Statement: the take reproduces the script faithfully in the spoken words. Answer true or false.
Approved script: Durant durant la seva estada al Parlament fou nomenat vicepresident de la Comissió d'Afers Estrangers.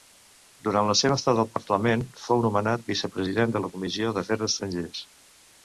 false